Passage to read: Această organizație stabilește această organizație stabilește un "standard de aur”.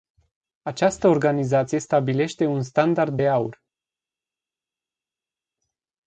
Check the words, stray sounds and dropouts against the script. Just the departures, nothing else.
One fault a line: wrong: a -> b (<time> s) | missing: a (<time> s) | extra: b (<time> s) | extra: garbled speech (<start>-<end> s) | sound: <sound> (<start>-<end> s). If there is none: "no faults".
missing: această organizație stabilește (2.5 s)